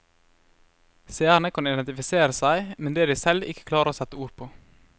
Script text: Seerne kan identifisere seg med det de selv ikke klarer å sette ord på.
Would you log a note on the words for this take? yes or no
no